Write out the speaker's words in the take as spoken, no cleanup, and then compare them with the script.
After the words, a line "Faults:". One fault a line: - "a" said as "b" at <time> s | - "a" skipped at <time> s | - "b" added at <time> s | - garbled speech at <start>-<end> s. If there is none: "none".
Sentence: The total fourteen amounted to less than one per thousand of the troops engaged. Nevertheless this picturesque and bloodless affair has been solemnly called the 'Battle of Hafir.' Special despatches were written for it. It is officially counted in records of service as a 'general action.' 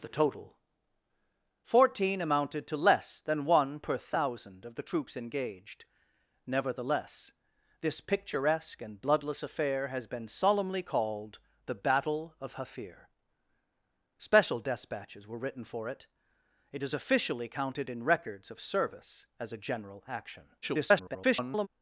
The total fourteen amounted to less than one per thousand of the troops engaged. Nevertheless this picturesque and bloodless affair has been solemnly called the 'Battle of Hafir.' Special despatches were written for it. It is officially counted in records of service as a 'general action.' [garbled]
Faults:
- garbled speech at 20.6-21.7 s